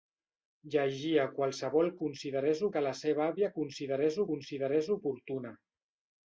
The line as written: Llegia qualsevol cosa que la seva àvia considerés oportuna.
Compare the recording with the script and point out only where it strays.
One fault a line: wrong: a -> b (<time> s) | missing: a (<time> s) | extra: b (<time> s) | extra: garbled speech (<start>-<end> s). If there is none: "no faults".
wrong: cosa -> considerés (2.1 s)
extra: considerés (4.3 s)